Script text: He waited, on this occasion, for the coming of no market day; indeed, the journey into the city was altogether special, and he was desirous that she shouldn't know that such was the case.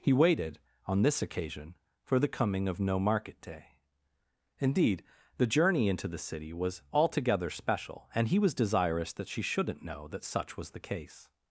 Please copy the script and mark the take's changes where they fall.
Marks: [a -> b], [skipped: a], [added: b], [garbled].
He waited, on this occasion, for the coming of no market day; indeed, the journey into the city was altogether special, and he was desirous that she shouldn't know that such was the case.